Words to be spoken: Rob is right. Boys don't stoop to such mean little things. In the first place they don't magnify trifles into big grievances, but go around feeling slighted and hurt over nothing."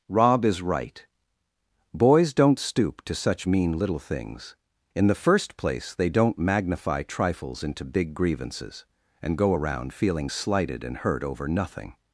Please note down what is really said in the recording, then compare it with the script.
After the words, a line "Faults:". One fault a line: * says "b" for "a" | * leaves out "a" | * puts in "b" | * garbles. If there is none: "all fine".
Rob is right. Boys don't stoop to such mean little things. In the first place they don't magnify trifles into big grievances, and go around feeling slighted and hurt over nothing."
Faults:
* says "and" for "but"